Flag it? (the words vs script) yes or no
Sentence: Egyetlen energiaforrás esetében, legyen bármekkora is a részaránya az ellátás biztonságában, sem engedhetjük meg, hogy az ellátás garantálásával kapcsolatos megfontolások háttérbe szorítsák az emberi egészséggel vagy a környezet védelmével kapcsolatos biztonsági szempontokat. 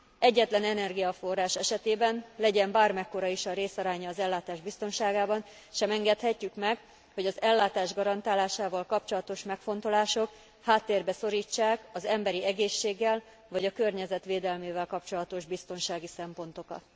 no